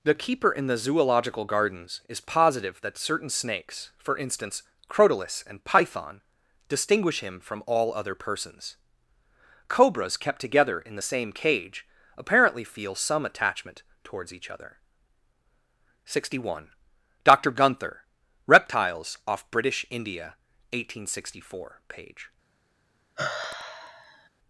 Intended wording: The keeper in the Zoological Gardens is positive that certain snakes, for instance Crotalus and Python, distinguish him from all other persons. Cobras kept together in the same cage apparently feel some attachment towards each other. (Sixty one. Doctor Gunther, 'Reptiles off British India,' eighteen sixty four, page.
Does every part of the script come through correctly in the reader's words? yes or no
yes